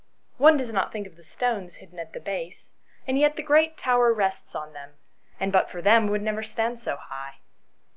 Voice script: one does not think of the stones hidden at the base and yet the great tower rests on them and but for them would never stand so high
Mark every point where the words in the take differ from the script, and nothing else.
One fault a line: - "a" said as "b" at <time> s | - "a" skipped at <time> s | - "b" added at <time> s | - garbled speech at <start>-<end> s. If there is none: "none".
none